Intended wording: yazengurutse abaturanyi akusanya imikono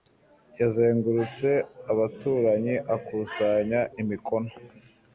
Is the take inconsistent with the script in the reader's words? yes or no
no